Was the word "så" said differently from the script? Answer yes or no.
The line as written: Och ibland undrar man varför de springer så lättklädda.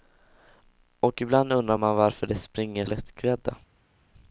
yes